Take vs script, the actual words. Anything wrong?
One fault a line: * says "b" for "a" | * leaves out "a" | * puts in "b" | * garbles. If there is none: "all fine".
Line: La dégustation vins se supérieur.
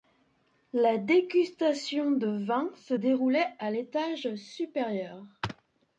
* puts in "de"
* puts in "déroulait à l'étage"